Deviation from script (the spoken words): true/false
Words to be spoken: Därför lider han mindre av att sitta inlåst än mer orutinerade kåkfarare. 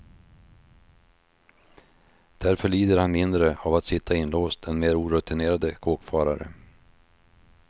false